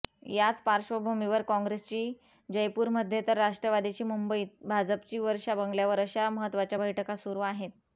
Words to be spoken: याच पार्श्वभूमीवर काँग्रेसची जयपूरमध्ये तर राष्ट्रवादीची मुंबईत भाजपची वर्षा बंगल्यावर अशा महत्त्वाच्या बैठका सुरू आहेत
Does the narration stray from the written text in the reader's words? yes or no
no